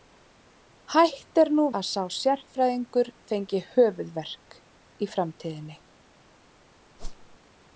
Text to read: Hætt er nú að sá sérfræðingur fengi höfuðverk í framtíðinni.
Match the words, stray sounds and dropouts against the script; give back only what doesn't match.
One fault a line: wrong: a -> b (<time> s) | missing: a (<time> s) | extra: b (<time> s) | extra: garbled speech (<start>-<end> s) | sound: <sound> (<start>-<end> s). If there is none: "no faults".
sound: whoosh (7.0-7.4 s)